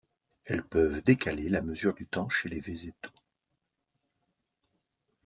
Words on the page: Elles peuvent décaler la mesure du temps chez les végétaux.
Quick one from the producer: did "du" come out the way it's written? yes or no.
yes